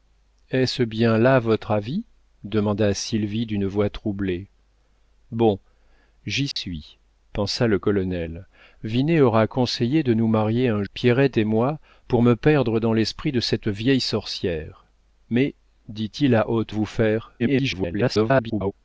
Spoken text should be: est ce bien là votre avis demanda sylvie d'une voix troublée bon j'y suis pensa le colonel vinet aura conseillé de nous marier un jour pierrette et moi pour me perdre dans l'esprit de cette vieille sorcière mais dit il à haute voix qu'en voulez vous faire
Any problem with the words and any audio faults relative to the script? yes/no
yes